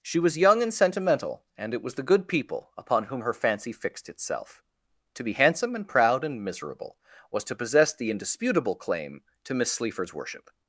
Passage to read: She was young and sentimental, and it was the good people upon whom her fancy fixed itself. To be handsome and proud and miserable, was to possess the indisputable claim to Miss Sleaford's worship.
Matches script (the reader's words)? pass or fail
pass